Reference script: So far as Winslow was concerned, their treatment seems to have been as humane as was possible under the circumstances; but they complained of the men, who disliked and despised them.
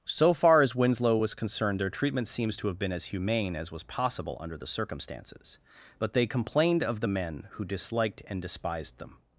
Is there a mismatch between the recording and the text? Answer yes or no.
no